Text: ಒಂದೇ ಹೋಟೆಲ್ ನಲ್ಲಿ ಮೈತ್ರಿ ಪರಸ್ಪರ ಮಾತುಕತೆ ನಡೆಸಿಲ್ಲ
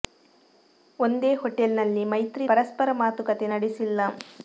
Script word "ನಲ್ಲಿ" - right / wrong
right